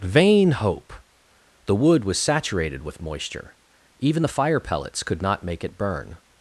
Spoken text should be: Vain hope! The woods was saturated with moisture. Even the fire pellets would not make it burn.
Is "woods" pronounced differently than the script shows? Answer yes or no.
yes